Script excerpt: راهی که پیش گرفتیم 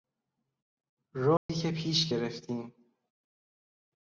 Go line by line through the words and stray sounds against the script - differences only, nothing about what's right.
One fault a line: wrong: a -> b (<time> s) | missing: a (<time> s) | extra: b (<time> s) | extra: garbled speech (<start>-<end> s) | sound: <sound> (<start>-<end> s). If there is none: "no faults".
sound: dropout (1.4-1.5 s)